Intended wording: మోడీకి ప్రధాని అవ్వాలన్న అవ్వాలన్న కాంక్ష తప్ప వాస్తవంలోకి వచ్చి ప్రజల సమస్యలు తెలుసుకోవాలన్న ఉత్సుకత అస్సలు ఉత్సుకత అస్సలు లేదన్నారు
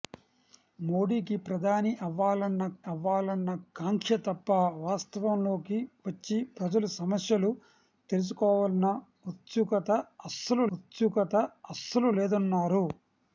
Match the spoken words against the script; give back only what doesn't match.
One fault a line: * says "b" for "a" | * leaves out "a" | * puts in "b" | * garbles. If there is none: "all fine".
all fine